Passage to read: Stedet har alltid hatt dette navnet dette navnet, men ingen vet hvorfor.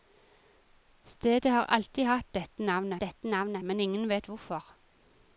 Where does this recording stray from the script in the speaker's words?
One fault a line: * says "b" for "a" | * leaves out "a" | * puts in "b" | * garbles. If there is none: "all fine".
all fine